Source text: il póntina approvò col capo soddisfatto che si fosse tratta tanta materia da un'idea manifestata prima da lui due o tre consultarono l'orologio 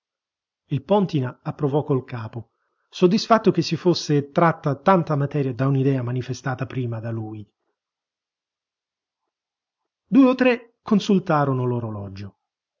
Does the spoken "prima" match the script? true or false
true